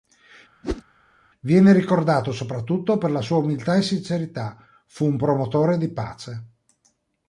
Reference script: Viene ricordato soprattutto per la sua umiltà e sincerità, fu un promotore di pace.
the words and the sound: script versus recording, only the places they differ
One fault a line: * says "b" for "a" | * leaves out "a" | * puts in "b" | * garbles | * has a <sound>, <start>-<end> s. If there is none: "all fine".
* has a whoosh, 0.6-0.8 s